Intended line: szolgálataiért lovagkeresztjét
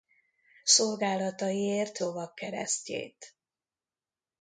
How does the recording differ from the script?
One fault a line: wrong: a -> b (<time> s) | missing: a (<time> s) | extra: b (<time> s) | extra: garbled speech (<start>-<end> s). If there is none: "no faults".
no faults